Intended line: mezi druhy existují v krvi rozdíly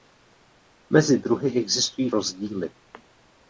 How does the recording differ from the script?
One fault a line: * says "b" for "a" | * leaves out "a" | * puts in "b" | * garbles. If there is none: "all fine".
* leaves out "v krvi"